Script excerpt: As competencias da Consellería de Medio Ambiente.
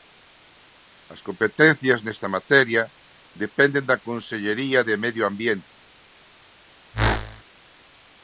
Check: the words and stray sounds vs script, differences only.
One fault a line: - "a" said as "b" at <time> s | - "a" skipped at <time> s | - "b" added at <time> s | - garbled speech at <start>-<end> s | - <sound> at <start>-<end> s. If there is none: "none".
- "nesta materia dependen" added at 2.0 s
- whoosh at 6.9-7.4 s